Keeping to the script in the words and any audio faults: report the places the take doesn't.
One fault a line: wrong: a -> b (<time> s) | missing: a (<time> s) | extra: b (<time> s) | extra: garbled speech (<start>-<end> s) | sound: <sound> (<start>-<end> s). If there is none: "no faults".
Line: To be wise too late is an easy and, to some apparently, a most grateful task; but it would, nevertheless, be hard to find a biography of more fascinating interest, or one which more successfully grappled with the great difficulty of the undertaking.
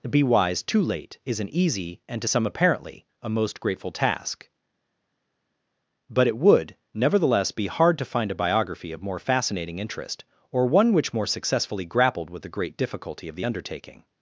missing: To (0.1 s)